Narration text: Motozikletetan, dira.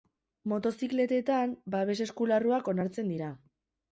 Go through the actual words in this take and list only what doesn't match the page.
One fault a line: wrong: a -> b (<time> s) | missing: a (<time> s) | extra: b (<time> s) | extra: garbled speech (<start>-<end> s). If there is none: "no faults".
extra: babes eskularruak onartzen (1.8 s)